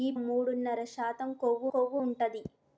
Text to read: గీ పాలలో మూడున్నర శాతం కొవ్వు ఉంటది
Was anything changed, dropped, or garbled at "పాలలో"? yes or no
yes